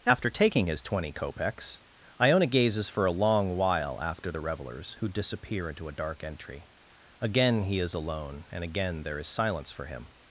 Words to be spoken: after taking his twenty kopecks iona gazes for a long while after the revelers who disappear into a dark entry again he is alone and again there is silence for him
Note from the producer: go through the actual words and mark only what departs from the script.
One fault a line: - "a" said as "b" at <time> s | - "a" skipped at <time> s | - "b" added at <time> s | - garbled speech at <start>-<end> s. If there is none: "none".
none